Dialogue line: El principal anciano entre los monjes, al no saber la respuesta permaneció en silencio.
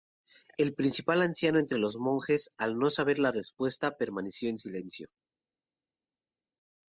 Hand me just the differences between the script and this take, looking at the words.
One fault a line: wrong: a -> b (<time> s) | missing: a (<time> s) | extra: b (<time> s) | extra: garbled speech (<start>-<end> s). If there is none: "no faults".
no faults